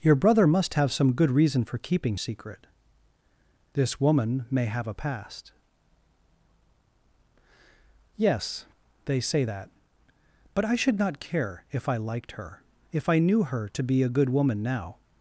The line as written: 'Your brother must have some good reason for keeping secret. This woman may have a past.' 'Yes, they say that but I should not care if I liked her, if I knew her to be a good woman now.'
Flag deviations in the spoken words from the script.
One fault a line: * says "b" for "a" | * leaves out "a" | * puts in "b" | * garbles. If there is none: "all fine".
all fine